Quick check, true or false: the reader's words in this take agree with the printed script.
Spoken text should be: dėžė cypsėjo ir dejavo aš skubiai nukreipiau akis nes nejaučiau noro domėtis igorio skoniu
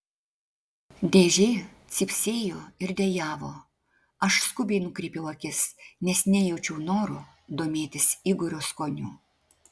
true